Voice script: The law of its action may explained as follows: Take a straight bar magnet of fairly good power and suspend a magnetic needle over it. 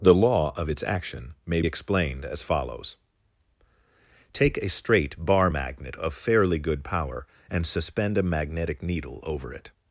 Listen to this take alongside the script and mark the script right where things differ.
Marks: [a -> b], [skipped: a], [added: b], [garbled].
The law of its action may explained as follows: Take a straight bar magnet of fairly good power and suspend a magnetic needle over it.